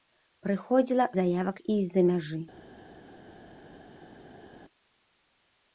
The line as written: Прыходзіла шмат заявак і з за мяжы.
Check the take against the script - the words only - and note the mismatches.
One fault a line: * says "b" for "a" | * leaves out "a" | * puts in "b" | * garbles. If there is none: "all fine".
* leaves out "шмат"